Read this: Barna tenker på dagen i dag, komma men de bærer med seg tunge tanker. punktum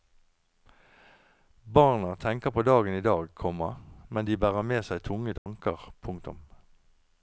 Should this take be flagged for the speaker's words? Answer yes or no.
no